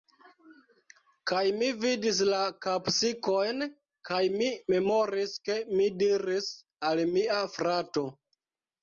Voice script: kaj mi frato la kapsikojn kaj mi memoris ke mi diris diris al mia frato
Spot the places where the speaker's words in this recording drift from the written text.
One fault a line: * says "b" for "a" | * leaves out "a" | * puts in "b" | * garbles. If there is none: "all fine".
* says "vidis" for "frato"
* leaves out "diris"